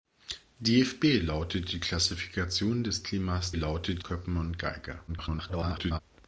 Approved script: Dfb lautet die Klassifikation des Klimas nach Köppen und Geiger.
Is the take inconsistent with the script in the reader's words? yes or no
yes